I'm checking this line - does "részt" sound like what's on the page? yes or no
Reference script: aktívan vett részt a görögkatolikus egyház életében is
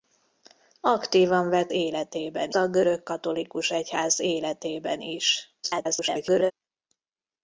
no